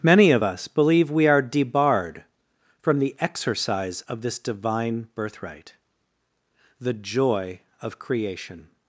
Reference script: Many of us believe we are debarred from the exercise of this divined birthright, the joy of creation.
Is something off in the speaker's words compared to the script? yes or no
yes